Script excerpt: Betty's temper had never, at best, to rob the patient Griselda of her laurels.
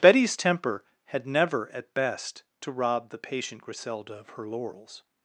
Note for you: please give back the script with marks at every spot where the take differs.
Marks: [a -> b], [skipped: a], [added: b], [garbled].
Betty's temper had never, at best, to rob the patient Griselda of her laurels.